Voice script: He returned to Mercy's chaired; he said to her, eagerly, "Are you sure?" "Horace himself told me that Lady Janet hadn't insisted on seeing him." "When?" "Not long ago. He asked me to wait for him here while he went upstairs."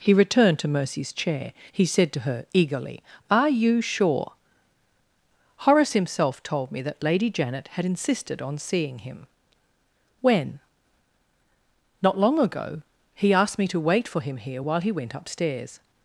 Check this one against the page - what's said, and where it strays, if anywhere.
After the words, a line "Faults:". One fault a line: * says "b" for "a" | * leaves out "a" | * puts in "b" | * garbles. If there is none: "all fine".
He returned to Mercy's chair; he said to her, eagerly, "Are you sure?" "Horace himself told me that Lady Janet had insisted on seeing him." "When?" "Not long ago. He asked me to wait for him here while he went upstairs."
Faults:
* says "chair" for "chaired"
* says "had" for "hadn't"